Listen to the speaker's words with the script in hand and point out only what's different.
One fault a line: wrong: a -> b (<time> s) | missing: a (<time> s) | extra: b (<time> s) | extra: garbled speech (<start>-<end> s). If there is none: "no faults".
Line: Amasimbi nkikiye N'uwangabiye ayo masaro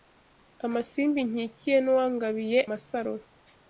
missing: ayo (2.6 s)